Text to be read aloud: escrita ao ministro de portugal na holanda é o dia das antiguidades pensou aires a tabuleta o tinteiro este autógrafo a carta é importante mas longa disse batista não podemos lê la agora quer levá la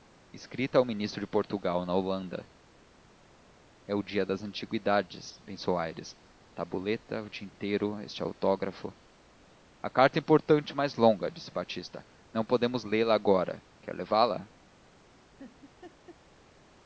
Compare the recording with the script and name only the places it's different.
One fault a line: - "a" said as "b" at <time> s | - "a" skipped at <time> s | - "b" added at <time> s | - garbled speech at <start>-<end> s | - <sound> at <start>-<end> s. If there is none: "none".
- laugh at 15.4-16.2 s